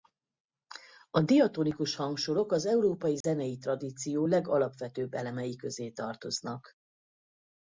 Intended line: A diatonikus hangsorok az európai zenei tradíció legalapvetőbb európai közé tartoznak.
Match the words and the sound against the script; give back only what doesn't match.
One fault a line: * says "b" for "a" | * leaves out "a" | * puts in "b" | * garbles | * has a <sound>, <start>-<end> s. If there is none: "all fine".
* has a dropout, 3.2-3.2 s
* says "elemei" for "európai"